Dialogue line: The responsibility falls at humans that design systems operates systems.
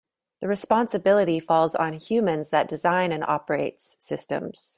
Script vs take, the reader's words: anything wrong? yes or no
yes